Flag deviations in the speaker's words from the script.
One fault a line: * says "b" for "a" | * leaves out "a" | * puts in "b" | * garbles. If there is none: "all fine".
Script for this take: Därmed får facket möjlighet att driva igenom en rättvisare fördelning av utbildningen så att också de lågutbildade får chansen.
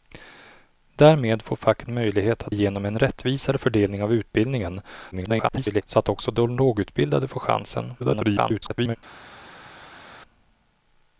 * leaves out "driva"
* garbles
* garbles